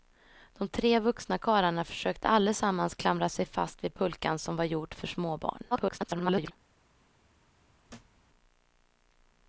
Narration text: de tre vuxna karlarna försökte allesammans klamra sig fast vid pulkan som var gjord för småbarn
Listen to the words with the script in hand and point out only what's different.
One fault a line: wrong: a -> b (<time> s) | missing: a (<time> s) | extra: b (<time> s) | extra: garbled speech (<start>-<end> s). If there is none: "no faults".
extra: garbled speech (5.7-6.5 s)